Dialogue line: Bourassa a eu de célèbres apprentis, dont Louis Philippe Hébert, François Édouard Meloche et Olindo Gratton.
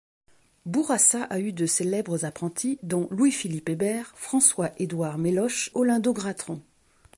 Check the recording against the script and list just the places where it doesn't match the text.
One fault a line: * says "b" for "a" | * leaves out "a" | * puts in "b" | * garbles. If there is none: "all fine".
* leaves out "et"